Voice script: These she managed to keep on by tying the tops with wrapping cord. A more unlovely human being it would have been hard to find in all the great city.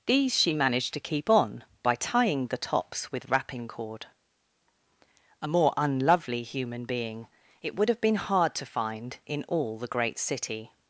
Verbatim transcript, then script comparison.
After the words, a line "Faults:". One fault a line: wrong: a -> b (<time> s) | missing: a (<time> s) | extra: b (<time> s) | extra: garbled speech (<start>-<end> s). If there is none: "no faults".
These she managed to keep on by tying the tops with wrapping cord. A more unlovely human being it would have been hard to find in all the great city.
Faults:
no faults